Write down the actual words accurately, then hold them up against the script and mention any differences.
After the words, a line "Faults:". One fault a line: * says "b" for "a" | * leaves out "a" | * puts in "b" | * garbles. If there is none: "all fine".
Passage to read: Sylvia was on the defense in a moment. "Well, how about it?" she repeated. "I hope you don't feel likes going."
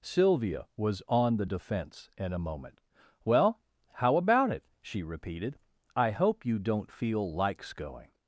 Sylvia was on the defense in a moment. "Well, how about it?" she repeated. "I hope you don't feel likes going."
Faults:
all fine